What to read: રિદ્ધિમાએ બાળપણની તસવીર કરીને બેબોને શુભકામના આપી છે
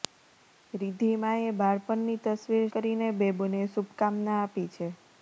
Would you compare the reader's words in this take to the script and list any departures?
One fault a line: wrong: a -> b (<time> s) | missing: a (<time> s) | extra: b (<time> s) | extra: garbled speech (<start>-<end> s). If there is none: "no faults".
no faults